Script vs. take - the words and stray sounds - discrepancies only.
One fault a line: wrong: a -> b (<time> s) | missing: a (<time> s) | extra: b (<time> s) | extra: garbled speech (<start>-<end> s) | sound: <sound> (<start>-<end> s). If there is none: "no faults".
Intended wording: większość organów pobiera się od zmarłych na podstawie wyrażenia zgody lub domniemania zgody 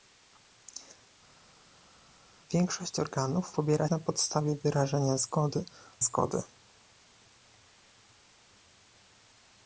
missing: się od zmarłych (3.9 s)
missing: lub domniemania (5.7 s)